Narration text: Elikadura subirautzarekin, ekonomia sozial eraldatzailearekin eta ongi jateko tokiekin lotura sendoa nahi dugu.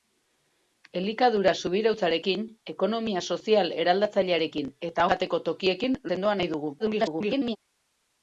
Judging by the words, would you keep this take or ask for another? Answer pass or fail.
fail